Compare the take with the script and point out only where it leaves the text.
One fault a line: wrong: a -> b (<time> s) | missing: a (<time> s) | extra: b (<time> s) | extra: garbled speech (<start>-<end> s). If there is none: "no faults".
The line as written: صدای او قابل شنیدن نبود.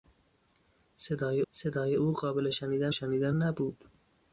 extra: صدای (1.5 s)
extra: شنیدن (2.9 s)